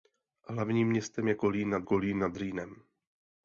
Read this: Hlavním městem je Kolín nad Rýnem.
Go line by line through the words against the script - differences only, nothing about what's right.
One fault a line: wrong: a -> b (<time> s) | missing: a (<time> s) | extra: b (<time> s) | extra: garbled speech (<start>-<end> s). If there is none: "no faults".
extra: Kolín nad (1.8 s)